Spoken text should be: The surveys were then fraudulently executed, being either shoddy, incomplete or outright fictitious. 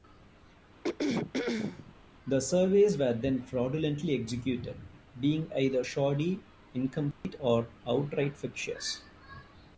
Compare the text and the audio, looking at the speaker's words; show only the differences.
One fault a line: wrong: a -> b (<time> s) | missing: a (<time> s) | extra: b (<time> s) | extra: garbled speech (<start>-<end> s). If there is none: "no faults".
no faults